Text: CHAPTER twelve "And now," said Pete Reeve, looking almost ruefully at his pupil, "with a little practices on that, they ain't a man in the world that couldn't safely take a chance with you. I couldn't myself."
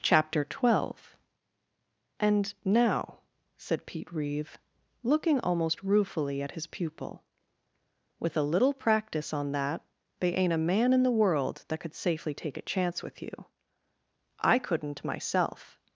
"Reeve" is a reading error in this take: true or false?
false